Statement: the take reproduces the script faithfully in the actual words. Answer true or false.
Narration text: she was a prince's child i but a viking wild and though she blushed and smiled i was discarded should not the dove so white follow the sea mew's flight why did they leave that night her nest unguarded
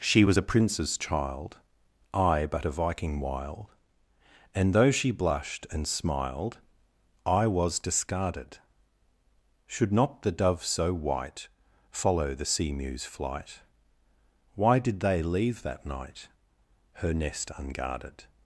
true